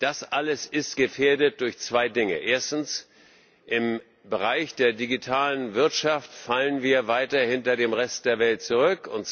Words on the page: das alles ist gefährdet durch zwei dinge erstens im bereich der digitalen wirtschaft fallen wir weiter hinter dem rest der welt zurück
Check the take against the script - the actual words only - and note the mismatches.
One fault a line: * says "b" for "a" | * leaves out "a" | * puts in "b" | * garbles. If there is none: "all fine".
all fine